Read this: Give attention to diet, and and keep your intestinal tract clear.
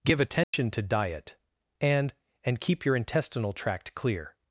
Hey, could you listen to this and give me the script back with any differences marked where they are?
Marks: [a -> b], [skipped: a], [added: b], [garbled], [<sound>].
Give attention [dropout] to diet, and and keep your intestinal tract clear.